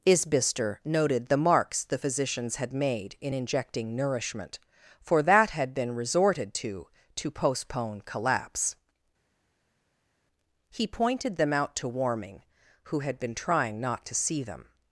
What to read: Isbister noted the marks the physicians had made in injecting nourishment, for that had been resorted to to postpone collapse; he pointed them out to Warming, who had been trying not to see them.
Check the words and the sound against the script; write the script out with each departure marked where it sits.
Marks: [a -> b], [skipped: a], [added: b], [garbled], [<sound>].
Isbister noted the marks the physicians had made in injecting nourishment, for that had been resorted to to postpone collapse; he pointed them out to Warming, who had been trying not to see them.